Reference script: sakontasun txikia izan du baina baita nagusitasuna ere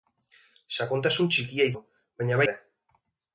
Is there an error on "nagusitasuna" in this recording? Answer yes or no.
yes